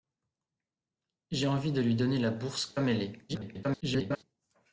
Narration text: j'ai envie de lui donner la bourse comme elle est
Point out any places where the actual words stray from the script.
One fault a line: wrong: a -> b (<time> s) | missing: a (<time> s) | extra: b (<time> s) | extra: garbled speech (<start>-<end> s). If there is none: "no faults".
extra: garbled speech (3.3-4.2 s)